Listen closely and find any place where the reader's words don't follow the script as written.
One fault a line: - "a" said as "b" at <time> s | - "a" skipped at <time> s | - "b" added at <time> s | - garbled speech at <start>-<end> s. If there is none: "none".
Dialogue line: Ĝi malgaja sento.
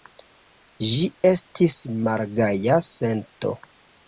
- "estis" added at 1.3 s